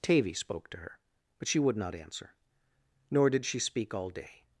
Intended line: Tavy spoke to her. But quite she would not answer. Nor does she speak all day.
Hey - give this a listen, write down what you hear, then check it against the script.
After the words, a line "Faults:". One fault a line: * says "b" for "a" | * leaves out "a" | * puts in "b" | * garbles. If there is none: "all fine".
Tavy spoke to her. But she would not answer. Nor did she speak all day.
Faults:
* leaves out "quite"
* says "did" for "does"